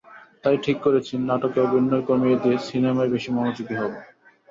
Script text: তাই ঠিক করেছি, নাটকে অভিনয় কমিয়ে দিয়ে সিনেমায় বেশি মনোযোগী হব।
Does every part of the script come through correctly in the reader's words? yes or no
yes